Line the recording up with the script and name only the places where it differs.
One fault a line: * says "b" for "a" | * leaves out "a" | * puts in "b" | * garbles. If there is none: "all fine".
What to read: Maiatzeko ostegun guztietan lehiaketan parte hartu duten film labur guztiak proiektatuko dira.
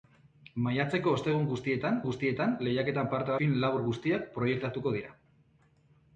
* puts in "guztietan"
* leaves out "hartu duten"